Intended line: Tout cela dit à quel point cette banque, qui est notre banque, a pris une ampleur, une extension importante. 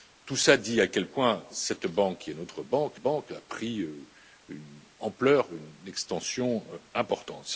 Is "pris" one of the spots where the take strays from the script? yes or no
no